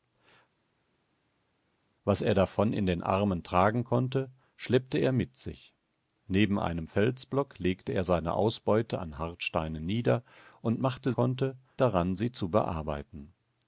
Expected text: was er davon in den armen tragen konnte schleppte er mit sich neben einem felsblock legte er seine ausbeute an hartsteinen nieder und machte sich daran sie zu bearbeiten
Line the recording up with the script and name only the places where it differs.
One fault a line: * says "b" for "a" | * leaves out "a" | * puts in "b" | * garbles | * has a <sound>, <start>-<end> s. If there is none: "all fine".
* says "konnte" for "sich"